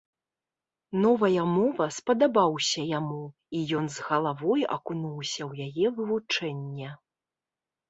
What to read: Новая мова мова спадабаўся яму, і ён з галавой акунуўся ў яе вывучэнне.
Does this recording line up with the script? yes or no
no